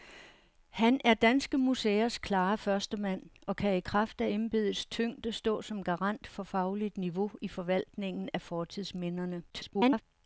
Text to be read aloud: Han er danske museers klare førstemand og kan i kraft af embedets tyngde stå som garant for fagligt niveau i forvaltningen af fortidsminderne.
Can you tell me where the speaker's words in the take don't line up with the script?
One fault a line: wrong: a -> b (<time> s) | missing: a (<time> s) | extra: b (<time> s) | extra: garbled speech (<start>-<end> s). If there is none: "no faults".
extra: garbled speech (9.5-10.0 s)